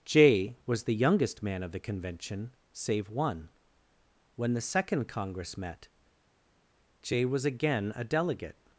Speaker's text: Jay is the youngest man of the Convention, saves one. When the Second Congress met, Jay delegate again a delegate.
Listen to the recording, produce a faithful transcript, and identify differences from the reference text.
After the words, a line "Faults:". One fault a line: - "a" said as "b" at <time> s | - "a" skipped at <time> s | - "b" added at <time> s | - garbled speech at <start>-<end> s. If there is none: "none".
Jay was the youngest man of the Convention, save one. When the Second Congress met, Jay was again a delegate.
Faults:
- "is" said as "was" at 0.7 s
- "saves" said as "save" at 2.7 s
- "delegate" said as "was" at 7.3 s